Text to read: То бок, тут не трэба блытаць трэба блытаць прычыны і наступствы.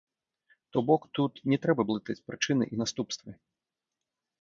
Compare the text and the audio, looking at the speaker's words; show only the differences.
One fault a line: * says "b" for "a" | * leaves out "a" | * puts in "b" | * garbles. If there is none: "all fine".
* leaves out "трэба блытаць"